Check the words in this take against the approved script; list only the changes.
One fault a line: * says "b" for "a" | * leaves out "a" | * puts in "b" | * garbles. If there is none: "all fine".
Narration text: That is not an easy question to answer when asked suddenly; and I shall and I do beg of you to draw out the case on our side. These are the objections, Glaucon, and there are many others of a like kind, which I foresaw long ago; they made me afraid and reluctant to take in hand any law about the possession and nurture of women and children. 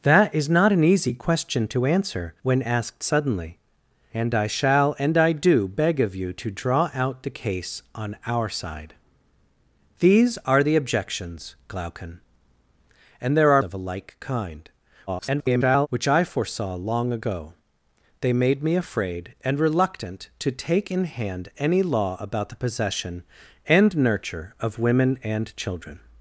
* leaves out "many others"
* garbles